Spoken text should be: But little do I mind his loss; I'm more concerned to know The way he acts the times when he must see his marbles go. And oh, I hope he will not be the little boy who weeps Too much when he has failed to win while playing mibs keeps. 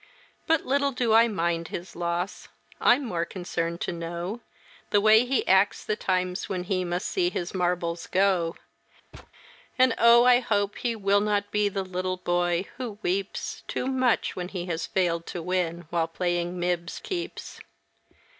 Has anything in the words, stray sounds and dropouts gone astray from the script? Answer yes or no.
yes